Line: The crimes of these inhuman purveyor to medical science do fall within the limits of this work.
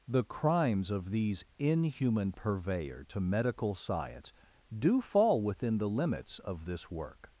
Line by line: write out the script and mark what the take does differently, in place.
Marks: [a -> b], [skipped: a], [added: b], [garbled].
The crimes of these inhuman purveyor to medical science do fall within the limits of this work.